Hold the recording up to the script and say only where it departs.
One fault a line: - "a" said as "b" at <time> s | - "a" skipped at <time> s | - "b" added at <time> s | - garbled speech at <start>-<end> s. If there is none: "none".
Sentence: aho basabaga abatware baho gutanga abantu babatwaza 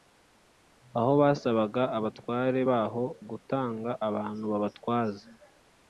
none